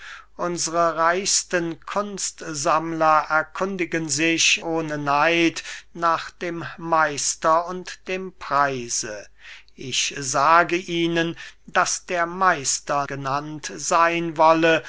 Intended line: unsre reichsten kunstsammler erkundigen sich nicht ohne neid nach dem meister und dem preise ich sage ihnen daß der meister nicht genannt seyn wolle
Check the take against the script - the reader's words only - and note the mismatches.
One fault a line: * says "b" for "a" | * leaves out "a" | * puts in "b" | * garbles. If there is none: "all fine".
* leaves out "nicht"
* leaves out "nicht"